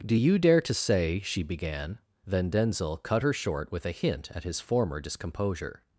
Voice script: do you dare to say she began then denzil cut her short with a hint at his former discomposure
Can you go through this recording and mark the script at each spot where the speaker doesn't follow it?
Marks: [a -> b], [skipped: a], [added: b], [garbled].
do you dare to say she began then denzil cut her short with a hint at his former discomposure